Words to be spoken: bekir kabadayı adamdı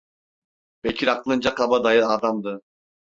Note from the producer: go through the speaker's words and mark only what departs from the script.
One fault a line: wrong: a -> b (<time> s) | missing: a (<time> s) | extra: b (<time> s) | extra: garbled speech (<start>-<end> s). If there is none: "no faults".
extra: aklınca (1.1 s)